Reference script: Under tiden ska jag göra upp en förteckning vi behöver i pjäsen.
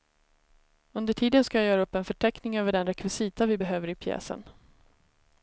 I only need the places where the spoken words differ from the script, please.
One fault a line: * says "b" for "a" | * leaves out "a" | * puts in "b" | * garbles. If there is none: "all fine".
* puts in "över den rekvisita"